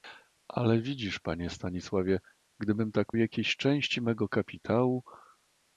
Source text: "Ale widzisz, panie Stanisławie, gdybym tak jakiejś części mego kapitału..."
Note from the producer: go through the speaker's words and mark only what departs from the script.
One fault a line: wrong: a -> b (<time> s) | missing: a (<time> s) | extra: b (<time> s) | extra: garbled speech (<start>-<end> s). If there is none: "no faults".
no faults